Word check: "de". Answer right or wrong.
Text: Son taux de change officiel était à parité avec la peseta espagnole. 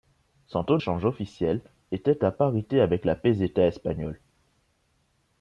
wrong